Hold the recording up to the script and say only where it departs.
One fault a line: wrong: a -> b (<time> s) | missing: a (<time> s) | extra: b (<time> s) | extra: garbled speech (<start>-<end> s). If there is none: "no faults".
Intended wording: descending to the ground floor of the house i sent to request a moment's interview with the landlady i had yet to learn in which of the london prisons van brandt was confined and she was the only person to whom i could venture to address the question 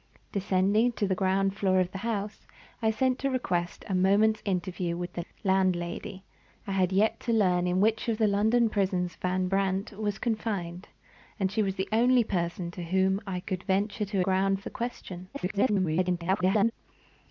wrong: address -> ground (14.2 s)
extra: garbled speech (15.3-16.7 s)